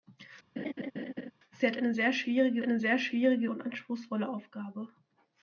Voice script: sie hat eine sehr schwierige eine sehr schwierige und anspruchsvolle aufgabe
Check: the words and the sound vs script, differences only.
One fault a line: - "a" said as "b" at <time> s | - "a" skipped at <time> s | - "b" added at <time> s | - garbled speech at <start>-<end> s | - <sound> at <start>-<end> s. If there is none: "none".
- laugh at 0.6-1.3 s